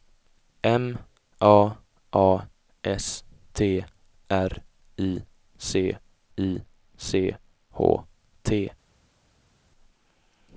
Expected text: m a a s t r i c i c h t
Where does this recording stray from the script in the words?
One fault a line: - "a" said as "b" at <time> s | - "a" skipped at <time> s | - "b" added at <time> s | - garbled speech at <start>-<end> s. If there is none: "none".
none